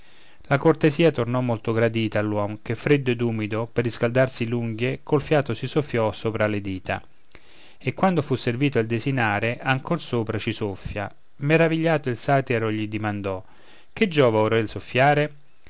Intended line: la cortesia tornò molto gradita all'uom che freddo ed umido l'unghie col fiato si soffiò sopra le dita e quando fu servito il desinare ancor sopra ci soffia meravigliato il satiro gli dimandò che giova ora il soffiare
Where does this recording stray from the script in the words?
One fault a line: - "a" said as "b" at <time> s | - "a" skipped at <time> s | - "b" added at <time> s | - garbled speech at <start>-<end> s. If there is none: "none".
- "per riscaldarsi" added at 3.7 s